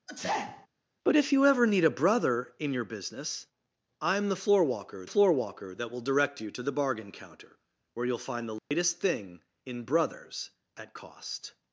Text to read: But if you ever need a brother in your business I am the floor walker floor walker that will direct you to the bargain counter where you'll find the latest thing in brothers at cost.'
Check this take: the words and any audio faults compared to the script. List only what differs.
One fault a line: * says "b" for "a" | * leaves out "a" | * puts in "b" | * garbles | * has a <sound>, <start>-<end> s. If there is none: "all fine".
* has a sneeze, 0.1-0.7 s
* has a dropout, 8.6-8.7 s